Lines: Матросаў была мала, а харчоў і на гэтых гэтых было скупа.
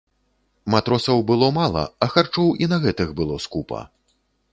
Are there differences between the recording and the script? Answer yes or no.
yes